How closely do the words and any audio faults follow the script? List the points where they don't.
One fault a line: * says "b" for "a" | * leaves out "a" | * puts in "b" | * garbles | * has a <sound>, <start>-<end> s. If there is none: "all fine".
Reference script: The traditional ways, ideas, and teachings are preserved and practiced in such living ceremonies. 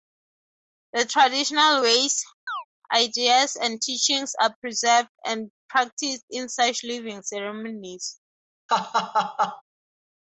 * has a chirp, 2.5-2.6 s
* has a laugh, 8.7-9.6 s